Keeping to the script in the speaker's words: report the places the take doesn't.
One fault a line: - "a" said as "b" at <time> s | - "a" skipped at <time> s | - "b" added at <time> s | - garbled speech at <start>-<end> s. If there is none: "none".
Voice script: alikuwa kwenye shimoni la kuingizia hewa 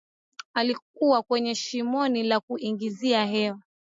none